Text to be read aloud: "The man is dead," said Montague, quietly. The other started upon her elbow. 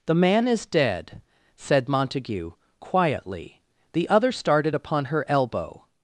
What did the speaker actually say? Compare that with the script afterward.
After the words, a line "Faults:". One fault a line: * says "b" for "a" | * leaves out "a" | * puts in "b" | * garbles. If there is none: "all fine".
"The man is dead," said Montague, quietly. The other started upon her elbow.
Faults:
all fine